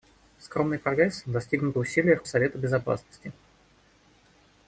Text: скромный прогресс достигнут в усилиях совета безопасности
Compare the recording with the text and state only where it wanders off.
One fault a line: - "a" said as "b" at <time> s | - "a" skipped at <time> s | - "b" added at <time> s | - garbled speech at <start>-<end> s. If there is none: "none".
none